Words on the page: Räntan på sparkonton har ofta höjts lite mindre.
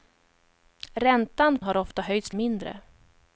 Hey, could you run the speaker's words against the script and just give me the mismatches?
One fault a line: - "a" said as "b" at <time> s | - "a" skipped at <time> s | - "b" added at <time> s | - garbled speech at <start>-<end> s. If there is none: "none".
- "på sparkonton" skipped at 1.6 s
- "lite" skipped at 2.3 s